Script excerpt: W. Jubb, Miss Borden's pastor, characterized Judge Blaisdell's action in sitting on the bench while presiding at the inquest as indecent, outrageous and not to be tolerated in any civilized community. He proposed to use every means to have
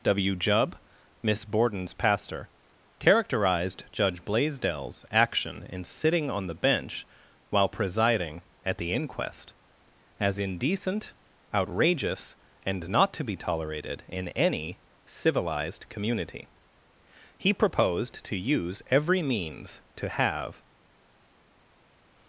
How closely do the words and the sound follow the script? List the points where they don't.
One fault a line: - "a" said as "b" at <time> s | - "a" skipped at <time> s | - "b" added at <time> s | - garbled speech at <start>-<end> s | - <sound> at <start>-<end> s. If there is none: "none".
none